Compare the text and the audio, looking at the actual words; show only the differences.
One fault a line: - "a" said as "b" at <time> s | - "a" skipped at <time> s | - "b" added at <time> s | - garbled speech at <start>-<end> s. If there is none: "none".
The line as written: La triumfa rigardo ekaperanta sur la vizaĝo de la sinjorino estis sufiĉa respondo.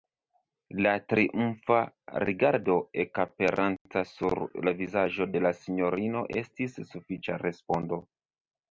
none